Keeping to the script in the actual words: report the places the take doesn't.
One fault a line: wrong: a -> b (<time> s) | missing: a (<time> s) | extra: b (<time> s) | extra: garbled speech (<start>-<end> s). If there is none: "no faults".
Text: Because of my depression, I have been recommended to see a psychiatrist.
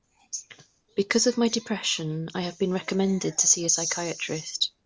no faults